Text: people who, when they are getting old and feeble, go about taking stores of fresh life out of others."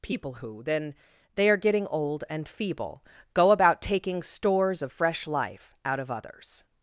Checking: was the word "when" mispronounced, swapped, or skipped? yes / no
yes